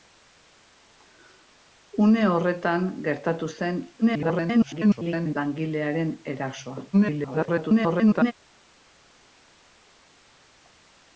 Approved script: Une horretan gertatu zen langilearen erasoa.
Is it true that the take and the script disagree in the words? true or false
true